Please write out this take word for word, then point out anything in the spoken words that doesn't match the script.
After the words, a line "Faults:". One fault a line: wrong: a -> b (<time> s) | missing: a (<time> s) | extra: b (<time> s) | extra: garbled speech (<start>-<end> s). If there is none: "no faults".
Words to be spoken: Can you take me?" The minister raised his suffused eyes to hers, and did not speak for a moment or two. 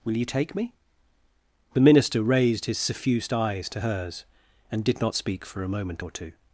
Will you take me?" The minister raised his suffused eyes to hers, and did not speak for a moment or two.
Faults:
wrong: Can -> Will (0.0 s)